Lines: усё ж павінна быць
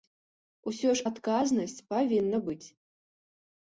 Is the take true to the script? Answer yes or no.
no